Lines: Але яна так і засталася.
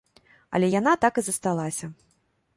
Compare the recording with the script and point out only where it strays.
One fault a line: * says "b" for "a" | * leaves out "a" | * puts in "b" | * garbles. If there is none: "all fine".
all fine